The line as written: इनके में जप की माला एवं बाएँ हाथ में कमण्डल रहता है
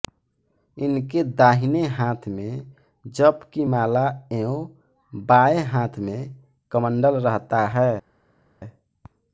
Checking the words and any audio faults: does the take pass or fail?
fail